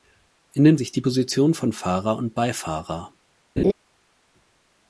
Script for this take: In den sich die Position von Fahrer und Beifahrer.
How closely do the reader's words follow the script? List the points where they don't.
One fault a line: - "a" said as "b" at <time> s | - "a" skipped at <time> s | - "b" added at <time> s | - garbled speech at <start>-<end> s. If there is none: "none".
none